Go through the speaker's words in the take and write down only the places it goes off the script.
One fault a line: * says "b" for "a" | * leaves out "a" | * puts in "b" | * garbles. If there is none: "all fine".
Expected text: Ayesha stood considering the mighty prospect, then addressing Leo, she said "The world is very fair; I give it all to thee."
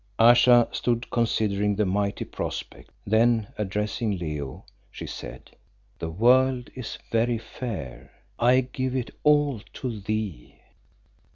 all fine